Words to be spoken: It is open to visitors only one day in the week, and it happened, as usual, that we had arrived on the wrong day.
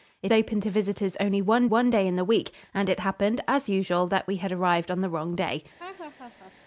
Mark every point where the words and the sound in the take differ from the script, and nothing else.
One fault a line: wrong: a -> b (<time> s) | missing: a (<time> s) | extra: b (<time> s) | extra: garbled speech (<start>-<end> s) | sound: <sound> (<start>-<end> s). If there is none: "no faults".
missing: is (0.3 s)
extra: one (1.7 s)
sound: laugh (5.8-6.5 s)